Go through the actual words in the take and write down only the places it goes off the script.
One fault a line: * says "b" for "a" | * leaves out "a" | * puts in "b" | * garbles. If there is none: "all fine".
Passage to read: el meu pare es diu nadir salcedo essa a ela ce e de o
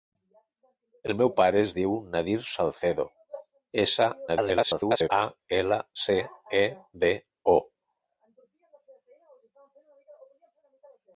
* garbles